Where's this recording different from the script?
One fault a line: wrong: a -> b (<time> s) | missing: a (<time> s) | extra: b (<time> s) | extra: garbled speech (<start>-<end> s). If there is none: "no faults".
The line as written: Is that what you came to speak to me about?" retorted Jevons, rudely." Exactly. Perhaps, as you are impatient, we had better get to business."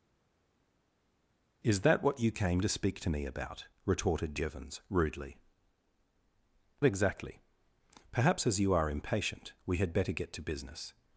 no faults